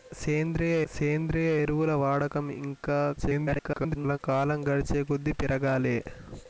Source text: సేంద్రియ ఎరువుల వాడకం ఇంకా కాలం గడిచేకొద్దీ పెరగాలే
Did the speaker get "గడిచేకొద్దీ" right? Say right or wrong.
right